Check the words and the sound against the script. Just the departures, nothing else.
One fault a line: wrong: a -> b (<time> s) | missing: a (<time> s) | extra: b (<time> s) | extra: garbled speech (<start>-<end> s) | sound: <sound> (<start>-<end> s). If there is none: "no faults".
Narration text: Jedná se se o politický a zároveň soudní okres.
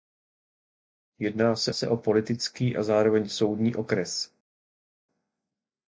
no faults